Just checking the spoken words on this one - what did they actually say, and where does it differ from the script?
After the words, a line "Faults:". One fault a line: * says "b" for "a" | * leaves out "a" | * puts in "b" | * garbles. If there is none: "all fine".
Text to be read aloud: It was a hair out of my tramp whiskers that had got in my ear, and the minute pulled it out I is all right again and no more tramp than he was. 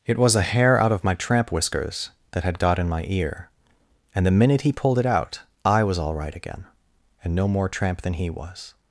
It was a hair out of my tramp whiskers that had got in my ear, and the minute he pulled it out I was all right again and no more tramp than he was.
Faults:
* puts in "he"
* says "was" for "is"